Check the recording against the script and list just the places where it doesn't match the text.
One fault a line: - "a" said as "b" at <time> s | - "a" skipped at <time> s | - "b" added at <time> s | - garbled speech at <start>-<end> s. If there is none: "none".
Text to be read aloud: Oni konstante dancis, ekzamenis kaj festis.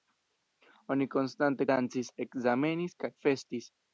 none